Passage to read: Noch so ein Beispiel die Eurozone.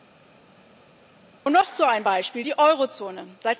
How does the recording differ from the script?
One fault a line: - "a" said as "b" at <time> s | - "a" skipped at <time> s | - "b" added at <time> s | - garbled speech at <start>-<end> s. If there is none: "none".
none